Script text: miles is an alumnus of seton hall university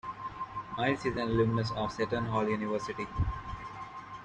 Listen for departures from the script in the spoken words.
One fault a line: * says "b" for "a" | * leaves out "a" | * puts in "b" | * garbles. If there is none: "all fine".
all fine